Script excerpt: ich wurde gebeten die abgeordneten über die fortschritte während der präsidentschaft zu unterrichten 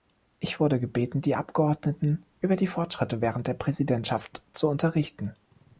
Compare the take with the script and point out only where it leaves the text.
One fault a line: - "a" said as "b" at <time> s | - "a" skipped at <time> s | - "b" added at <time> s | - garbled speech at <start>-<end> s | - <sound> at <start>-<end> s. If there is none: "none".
none